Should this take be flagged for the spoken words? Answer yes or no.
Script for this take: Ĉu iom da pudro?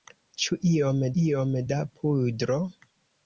yes